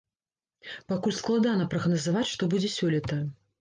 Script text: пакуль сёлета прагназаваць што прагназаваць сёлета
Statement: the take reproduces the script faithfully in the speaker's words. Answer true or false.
false